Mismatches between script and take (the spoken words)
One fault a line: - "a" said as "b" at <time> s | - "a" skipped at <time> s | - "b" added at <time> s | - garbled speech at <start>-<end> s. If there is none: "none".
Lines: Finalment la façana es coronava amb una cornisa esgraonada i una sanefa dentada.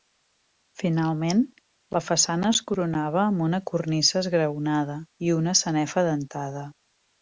none